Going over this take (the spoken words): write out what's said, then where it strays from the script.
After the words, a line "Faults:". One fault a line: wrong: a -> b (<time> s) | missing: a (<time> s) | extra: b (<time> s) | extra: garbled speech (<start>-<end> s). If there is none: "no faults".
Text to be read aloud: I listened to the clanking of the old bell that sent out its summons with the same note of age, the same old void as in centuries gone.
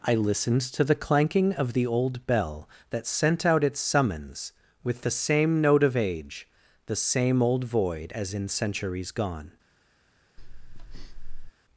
I listened to the clanking of the old bell that sent out its summons with the same note of age, the same old void as in centuries gone.
Faults:
no faults